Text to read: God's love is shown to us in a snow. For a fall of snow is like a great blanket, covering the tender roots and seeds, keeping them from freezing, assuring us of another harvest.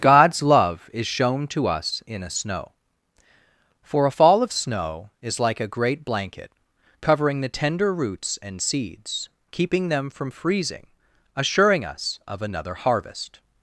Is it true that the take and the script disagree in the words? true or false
false